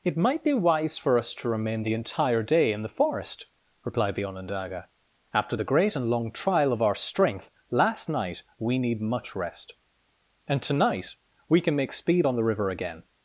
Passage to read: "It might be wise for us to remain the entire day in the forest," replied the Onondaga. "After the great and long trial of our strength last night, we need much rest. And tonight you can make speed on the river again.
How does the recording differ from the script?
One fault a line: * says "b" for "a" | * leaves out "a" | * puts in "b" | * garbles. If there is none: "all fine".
* says "we" for "you"